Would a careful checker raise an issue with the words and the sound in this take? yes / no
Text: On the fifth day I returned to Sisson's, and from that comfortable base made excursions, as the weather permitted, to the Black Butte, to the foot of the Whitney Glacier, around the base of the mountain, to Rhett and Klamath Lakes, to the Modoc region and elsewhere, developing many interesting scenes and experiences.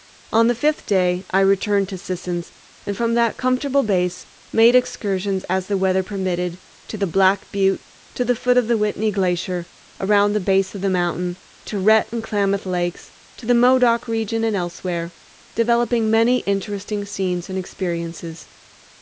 no